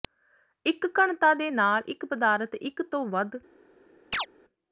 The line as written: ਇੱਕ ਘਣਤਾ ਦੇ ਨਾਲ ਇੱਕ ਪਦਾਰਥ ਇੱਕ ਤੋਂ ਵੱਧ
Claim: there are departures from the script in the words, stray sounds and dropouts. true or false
true